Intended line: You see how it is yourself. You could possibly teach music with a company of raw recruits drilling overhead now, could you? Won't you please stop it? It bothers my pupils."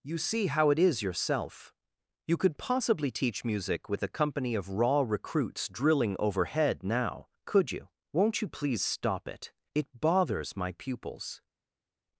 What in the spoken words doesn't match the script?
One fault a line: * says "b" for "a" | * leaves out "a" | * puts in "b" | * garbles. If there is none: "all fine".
all fine